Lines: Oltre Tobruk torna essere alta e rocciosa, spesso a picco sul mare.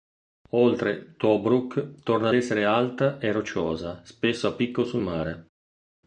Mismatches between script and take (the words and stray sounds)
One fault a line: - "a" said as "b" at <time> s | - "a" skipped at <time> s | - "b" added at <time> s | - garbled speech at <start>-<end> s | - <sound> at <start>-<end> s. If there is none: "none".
none